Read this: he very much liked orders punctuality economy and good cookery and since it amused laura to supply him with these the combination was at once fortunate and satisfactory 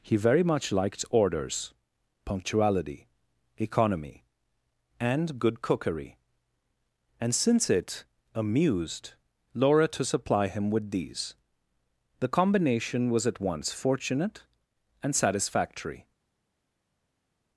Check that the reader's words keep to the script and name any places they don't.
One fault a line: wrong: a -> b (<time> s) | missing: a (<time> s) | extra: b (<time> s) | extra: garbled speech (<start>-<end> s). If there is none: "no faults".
no faults